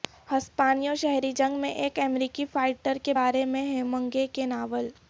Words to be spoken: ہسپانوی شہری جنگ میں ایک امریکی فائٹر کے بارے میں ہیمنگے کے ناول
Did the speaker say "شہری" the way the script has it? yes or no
yes